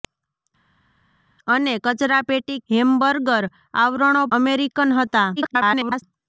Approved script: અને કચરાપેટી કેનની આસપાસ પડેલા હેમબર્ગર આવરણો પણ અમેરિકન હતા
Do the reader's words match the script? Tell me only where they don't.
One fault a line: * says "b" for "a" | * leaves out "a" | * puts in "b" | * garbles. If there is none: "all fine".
* leaves out "કેનની આસપાસ પડેલા"
* leaves out "પણ"
* garbles